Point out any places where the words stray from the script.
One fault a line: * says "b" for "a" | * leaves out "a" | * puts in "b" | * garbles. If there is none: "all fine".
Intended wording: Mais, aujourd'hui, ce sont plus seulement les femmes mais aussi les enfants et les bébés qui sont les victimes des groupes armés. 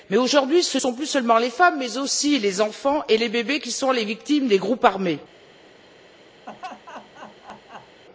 all fine